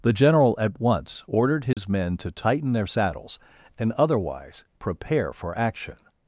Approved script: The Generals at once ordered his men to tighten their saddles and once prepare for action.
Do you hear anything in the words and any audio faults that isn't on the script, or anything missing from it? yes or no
yes